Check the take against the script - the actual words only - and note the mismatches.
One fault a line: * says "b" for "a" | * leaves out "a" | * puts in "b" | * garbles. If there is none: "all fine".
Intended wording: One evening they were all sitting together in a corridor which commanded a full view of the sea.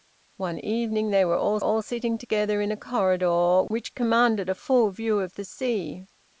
* puts in "all"